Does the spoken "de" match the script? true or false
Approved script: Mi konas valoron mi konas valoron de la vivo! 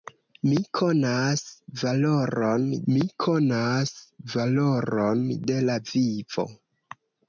true